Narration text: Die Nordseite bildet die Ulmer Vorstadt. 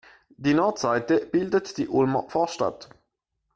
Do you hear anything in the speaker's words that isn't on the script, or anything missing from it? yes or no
no